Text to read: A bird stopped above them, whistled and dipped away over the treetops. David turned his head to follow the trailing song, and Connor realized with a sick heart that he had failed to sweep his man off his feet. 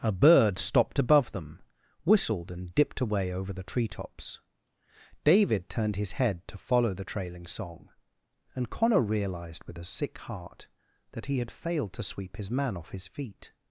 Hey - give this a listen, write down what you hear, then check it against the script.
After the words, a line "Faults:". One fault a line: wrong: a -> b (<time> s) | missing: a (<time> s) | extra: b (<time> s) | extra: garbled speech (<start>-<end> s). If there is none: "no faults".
A bird stopped above them, whistled and dipped away over the treetops. David turned his head to follow the trailing song, and Connor realized with a sick heart that he had failed to sweep his man off his feet.
Faults:
no faults